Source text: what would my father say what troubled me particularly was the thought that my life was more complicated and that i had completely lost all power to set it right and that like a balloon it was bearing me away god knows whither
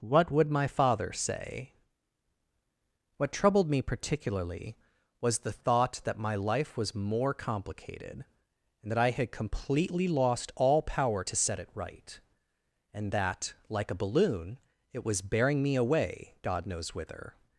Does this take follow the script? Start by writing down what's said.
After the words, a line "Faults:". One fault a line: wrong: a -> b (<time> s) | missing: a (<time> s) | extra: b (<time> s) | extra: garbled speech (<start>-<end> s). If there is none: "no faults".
what would my father say what troubled me particularly was the thought that my life was more complicated and that i had completely lost all power to set it right and that like a balloon it was bearing me away god knows whither
Faults:
no faults